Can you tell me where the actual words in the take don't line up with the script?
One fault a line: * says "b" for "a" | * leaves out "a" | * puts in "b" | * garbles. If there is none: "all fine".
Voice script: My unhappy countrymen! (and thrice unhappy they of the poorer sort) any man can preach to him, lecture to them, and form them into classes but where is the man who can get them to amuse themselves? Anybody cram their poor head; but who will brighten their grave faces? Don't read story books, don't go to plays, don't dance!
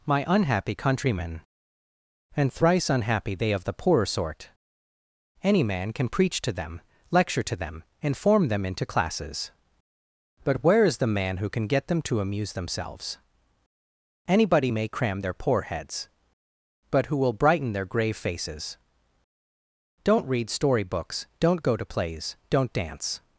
* says "them" for "him"
* puts in "may"
* says "heads" for "head"